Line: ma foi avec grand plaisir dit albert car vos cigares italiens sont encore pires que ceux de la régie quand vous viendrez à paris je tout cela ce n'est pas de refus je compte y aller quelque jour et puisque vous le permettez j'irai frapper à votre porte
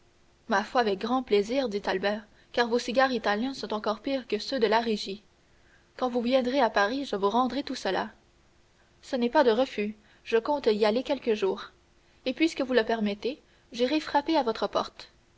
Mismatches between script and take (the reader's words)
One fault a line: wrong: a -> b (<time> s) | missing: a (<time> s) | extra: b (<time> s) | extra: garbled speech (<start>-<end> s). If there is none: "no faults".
extra: vous rendrai (7.2 s)